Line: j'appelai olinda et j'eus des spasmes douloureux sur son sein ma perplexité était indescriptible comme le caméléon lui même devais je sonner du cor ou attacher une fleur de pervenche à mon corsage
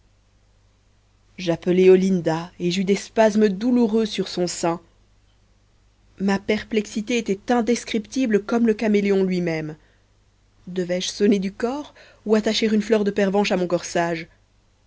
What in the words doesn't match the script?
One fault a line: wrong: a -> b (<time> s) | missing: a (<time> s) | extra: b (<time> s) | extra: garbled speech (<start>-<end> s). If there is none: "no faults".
no faults